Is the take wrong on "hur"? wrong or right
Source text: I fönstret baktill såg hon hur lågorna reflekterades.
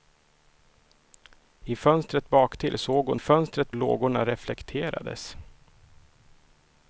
wrong